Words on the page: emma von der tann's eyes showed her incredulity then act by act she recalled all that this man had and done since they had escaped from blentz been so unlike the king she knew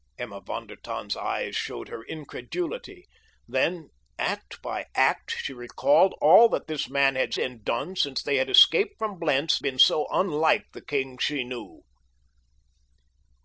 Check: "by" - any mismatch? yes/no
no